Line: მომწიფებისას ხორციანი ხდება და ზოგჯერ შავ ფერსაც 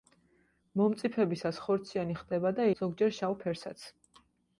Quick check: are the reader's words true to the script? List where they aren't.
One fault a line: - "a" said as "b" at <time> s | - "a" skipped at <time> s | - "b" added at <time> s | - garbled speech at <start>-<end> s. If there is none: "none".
none